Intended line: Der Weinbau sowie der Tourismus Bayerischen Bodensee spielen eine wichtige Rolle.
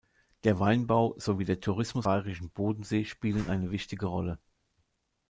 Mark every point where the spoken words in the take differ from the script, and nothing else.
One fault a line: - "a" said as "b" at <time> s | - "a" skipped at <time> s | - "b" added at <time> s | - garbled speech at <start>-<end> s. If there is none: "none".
none